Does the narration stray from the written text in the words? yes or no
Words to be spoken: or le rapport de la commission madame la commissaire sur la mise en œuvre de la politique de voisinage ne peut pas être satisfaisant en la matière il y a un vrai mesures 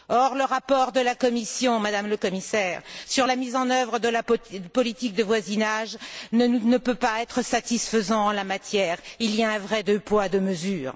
yes